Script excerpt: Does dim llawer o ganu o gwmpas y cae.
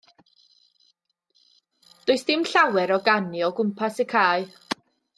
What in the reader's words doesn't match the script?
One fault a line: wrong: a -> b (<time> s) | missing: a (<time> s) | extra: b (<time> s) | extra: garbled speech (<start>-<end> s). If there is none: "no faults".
no faults